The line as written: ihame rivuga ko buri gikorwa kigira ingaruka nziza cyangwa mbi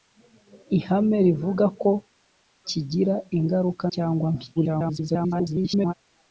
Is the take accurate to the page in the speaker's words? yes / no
no